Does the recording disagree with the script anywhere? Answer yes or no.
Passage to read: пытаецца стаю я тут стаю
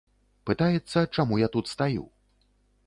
yes